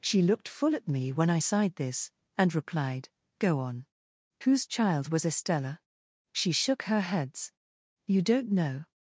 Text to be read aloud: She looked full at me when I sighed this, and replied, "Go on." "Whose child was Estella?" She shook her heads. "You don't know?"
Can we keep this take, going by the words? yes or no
yes